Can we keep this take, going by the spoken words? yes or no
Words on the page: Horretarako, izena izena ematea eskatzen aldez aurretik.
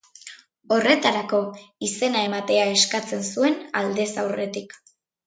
no